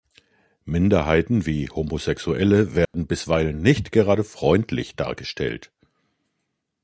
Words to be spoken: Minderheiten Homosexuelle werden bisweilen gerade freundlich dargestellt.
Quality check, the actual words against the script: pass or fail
fail